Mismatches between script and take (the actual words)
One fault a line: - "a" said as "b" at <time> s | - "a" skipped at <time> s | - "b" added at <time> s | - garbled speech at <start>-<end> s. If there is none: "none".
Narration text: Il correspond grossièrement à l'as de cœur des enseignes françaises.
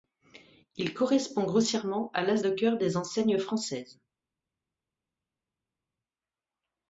none